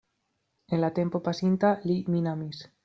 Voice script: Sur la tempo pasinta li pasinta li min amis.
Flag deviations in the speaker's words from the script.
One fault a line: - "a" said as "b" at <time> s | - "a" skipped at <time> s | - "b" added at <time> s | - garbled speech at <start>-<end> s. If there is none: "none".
- "Sur" said as "En" at 0.7 s
- "pasinta li" skipped at 2.0 s